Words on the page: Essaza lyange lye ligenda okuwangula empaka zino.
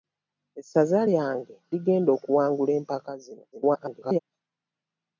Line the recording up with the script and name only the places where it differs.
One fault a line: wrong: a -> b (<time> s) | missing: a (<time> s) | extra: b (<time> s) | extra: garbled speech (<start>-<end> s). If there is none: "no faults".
missing: lye (1.6 s)
extra: garbled speech (3.5-4.2 s)